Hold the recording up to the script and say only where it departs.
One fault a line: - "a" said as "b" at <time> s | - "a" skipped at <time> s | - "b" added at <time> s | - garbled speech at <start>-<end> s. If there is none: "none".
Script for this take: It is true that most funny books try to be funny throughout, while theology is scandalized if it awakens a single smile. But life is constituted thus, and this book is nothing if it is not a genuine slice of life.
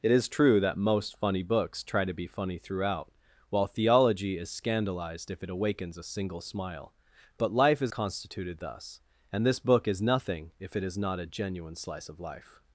none